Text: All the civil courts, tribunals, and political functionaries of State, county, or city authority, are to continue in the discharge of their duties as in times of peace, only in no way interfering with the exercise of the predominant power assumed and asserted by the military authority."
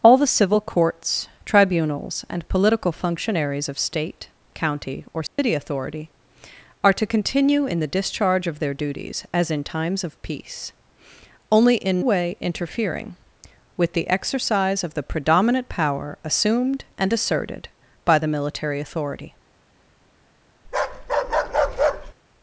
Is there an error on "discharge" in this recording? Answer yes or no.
no